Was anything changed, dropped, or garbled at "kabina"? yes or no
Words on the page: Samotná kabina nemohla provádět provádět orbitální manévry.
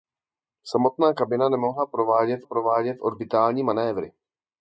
no